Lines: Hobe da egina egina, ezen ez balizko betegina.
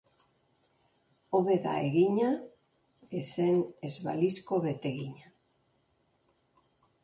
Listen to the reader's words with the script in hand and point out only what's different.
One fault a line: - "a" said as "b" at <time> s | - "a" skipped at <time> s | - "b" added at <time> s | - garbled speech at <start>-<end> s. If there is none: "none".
- "egina" skipped at 2.3 s